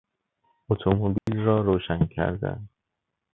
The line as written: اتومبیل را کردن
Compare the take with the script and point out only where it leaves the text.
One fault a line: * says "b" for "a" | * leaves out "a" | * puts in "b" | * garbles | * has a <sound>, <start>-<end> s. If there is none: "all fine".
* has a dropout, 1.2-1.3 s
* puts in "روشن"